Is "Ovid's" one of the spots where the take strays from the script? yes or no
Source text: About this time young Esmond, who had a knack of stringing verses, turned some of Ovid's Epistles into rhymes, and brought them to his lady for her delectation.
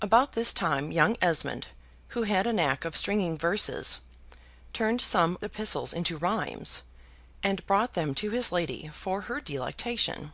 yes